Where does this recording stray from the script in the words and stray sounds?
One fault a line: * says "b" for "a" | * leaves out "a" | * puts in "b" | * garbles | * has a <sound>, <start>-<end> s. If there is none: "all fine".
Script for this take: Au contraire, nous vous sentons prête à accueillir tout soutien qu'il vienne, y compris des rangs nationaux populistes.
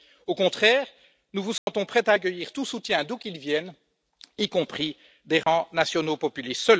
* has a dropout, 1.6-1.7 s
* puts in "d'où"
* has a dropout, 5.4-5.5 s